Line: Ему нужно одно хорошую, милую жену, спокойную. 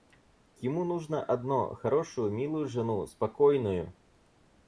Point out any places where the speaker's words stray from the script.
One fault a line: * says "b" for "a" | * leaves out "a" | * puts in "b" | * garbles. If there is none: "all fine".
all fine